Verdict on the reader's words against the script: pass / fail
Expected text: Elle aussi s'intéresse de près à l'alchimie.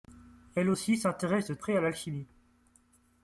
pass